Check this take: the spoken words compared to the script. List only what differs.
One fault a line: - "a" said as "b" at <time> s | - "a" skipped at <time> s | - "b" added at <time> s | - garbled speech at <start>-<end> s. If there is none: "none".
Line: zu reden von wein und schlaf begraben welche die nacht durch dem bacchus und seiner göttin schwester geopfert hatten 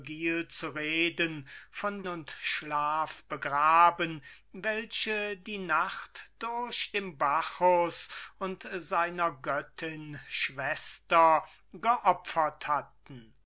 - "wein" skipped at 2.1 s